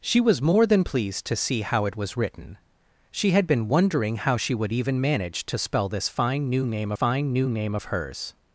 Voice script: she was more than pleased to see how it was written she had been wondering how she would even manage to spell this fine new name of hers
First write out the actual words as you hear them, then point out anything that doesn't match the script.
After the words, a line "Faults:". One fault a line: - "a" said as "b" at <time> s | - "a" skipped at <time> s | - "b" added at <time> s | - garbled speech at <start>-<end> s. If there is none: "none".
she was more than pleased to see how it was written she had been wondering how she would even manage to spell this fine new name fine new name of hers
Faults:
- "fine new name" added at 6.9 s